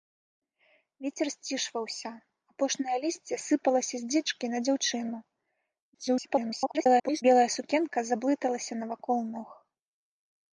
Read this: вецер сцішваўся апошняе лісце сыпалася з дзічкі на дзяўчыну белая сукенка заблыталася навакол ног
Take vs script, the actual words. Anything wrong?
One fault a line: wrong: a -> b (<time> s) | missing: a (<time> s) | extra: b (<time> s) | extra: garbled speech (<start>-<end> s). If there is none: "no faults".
extra: garbled speech (5.9-7.2 s)